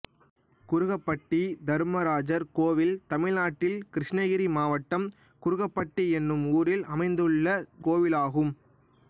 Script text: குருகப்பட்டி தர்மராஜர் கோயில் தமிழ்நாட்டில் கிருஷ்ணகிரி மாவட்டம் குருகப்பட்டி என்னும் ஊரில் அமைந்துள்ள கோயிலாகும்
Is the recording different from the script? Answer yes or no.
no